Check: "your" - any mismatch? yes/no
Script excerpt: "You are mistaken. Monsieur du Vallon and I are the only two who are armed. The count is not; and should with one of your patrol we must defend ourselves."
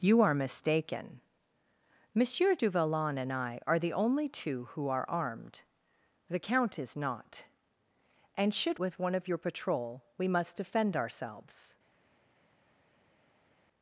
no